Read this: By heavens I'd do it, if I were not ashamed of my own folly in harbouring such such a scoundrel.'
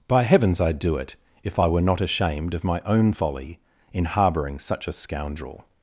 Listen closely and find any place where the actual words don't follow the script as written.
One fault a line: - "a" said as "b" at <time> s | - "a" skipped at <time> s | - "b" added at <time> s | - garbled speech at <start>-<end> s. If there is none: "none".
- "such" skipped at 4.9 s